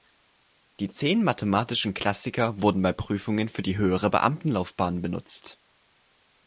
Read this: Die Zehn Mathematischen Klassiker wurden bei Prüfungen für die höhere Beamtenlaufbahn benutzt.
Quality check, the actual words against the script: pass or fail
pass